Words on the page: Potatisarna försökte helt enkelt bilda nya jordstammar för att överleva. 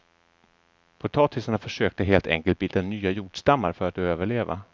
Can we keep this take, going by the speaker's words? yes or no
yes